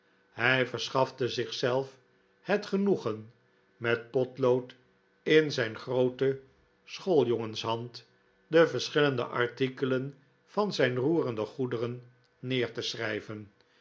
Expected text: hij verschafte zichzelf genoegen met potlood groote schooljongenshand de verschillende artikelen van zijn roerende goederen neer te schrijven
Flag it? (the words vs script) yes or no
yes